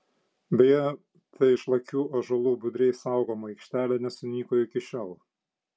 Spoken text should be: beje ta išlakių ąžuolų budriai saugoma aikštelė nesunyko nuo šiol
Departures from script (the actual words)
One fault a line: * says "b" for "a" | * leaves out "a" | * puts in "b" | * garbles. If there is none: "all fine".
* says "iki" for "nuo"